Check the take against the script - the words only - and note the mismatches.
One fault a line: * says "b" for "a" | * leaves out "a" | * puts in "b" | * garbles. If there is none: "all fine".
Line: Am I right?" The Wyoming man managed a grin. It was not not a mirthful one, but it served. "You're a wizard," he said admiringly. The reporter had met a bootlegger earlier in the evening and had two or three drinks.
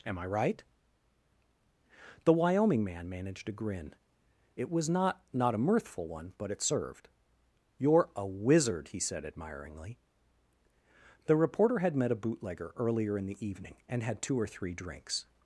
all fine